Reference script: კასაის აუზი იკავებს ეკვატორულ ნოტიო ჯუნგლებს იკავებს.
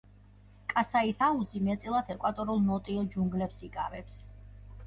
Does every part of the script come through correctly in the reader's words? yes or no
no